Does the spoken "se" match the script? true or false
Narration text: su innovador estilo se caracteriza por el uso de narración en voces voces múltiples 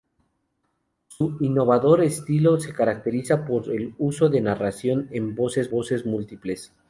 true